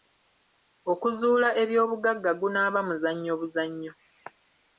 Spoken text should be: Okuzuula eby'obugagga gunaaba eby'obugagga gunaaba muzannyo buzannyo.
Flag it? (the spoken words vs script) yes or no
yes